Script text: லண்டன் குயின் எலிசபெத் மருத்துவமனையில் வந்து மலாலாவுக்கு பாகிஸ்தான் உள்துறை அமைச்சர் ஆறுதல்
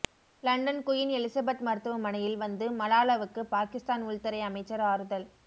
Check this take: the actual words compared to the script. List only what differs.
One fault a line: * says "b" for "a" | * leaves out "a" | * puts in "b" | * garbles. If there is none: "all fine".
all fine